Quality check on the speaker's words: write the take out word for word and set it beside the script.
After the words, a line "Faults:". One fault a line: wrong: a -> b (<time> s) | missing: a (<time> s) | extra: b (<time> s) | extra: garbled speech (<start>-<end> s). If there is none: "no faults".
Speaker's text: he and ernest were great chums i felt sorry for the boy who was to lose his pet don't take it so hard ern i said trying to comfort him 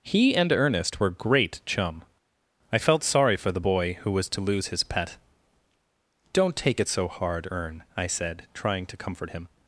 he and ernest were great chum i felt sorry for the boy who was to lose his pet don't take it so hard ern i said trying to comfort him
Faults:
wrong: chums -> chum (1.6 s)